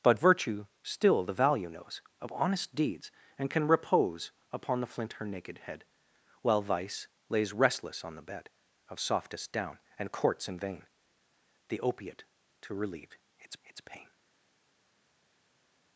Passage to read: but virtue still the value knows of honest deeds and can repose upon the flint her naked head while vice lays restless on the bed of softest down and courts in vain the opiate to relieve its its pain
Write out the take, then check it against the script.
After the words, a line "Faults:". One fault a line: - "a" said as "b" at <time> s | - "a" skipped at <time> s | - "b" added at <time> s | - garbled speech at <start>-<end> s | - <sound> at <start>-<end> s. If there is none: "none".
but virtue still the value knows of honest deeds and can repose upon the flint her naked head while vice lays restless on the bed of softest down and courts in vain the opiate to relieve its its pain
Faults:
none